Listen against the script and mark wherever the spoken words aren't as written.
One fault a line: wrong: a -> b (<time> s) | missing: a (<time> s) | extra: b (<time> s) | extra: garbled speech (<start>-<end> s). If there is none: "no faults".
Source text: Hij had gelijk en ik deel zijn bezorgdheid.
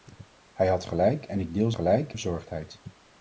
wrong: zijn -> gelijk (1.7 s)